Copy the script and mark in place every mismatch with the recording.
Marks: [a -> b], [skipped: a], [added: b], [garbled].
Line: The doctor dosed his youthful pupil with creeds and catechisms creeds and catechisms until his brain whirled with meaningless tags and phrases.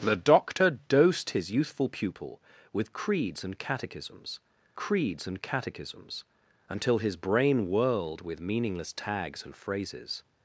The doctor dosed his youthful pupil with creeds and catechisms creeds and catechisms until his brain whirled with meaningless tags and phrases.